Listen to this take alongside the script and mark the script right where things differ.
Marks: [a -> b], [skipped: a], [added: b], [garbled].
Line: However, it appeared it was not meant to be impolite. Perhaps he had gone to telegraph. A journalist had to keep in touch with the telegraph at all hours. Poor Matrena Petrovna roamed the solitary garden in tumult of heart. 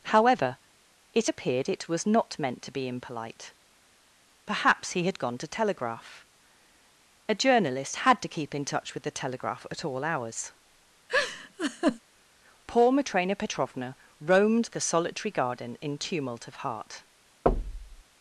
However, it appeared it was not meant to be impolite. Perhaps he had gone to telegraph. A journalist had to keep in touch with the telegraph at all hours. Poor Matrena Petrovna roamed the solitary garden in tumult of heart.